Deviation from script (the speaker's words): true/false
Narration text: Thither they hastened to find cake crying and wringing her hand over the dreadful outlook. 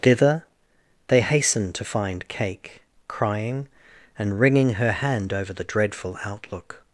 false